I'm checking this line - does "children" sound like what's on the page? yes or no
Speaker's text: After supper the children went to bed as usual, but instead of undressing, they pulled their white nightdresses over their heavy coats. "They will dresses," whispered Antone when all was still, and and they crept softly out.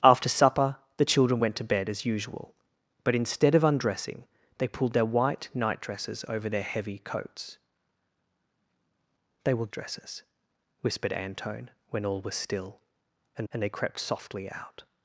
yes